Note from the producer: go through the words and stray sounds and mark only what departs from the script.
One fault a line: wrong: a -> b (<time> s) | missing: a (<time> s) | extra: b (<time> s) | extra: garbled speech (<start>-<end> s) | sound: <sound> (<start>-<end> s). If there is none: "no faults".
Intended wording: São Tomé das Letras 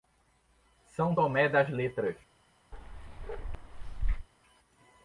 sound: bark (2.7-4.3 s)